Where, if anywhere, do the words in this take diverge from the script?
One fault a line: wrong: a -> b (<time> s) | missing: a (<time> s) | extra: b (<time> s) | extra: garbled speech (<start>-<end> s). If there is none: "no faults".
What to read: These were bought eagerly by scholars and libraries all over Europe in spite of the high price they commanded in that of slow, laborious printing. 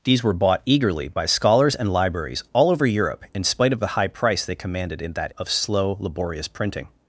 no faults